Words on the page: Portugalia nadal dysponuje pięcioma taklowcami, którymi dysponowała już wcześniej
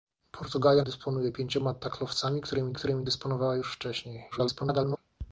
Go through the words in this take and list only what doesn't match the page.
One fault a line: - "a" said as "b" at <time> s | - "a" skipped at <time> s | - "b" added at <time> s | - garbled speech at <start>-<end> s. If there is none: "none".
- "nadal" skipped at 0.8 s
- "którymi" added at 2.7 s
- garbled speech at 4.3-5.0 s